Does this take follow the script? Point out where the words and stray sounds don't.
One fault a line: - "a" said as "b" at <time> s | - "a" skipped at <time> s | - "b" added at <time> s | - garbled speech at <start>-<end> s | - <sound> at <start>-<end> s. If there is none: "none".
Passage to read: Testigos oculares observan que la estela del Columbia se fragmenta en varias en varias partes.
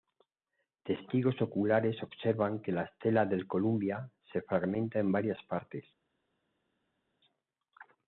- "en varias" skipped at 5.4 s